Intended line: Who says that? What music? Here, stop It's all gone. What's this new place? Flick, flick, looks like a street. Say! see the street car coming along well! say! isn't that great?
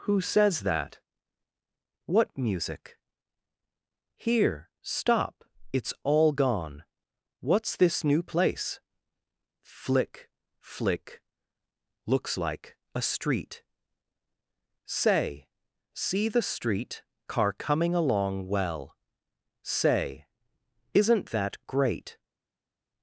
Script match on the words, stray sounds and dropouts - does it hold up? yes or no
yes